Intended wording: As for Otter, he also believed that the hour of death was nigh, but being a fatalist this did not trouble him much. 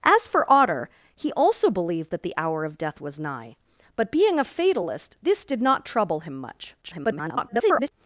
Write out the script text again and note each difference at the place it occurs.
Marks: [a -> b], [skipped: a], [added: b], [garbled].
As for Otter, he also believed that the hour of death was nigh, but being a fatalist this did not trouble him much. [garbled]